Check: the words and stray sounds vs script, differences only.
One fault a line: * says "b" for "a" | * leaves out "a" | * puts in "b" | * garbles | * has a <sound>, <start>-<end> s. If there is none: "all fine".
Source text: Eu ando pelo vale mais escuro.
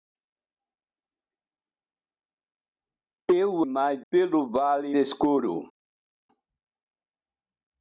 * says "mais" for "ando"
* leaves out "mais"